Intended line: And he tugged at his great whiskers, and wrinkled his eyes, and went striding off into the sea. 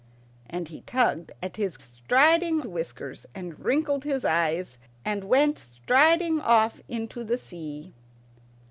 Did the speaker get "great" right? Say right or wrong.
wrong